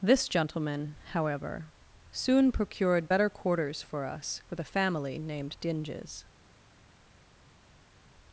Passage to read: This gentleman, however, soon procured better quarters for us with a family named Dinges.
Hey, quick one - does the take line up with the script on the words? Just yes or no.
yes